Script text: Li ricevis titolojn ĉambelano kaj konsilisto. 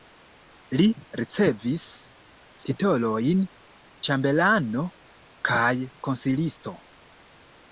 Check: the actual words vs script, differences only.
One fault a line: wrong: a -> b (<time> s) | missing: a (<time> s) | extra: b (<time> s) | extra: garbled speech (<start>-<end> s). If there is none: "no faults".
no faults